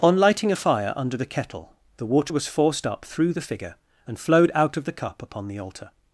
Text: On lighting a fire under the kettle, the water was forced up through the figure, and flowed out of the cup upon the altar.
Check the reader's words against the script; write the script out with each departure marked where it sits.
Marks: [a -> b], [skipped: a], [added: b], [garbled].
On lighting a fire under the kettle, the water was forced up through the figure, and flowed out of the cup upon the altar.